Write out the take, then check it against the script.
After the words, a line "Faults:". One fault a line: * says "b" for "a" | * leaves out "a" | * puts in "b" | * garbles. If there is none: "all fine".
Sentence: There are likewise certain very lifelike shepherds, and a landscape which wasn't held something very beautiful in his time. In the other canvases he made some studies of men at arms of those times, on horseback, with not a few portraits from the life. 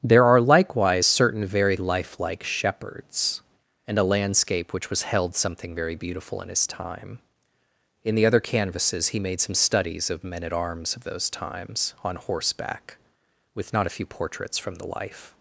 There are likewise certain very lifelike shepherds, and a landscape which was held something very beautiful in his time. In the other canvases he made some studies of men at arms of those times, on horseback, with not a few portraits from the life.
Faults:
* says "was" for "wasn't"